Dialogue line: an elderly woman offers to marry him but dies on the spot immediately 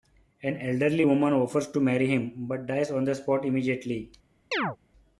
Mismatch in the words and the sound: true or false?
true